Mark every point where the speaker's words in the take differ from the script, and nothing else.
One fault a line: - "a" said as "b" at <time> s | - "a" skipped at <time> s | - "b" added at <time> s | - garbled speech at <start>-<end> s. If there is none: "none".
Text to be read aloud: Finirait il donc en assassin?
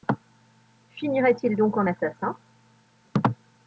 none